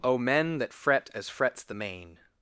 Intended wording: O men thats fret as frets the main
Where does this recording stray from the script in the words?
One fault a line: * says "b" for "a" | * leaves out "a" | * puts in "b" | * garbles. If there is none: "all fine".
* says "that" for "thats"